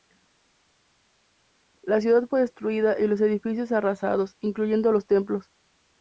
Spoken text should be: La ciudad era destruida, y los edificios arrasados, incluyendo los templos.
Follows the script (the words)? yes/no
no